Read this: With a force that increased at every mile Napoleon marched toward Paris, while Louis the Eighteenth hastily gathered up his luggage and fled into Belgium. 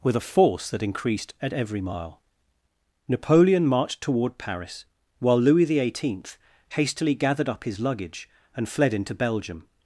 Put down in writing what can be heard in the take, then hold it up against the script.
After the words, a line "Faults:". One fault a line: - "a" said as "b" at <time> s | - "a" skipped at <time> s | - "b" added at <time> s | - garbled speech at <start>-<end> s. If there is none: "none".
With a force that increased at every mile Napoleon marched toward Paris, while Louis the Eighteenth hastily gathered up his luggage and fled into Belgium.
Faults:
none